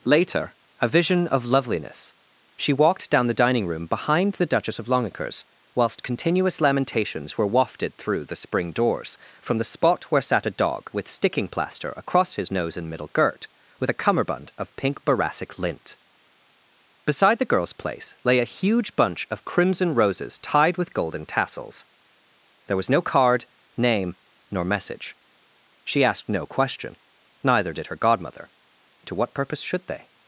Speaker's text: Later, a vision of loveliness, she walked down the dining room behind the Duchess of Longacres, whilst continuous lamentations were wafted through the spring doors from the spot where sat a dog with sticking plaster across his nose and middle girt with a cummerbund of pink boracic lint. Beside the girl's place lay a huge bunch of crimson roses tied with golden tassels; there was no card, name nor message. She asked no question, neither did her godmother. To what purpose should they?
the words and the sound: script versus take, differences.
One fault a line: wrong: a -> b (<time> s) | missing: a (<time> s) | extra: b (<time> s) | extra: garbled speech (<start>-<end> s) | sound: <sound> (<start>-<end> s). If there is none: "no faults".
no faults